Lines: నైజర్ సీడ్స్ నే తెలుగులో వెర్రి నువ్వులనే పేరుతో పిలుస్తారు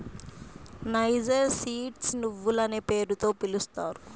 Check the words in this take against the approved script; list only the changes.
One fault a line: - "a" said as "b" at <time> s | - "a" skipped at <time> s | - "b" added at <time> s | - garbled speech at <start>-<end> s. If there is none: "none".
- "నే తెలుగులో వెర్రి" skipped at 2.1 s